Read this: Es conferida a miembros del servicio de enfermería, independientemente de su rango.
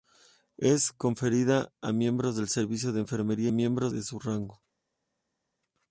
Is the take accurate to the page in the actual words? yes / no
no